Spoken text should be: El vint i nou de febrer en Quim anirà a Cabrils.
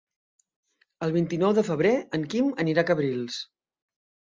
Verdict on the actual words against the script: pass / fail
pass